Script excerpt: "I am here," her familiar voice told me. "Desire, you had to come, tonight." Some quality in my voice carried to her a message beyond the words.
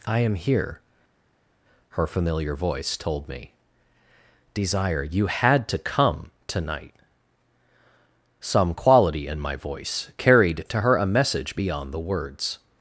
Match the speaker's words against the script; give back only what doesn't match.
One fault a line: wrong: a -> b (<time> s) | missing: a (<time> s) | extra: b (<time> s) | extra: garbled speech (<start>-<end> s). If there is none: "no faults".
no faults